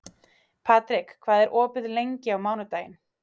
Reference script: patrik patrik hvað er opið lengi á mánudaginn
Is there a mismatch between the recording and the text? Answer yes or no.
yes